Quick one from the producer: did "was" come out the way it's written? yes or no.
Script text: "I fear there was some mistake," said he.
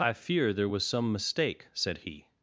yes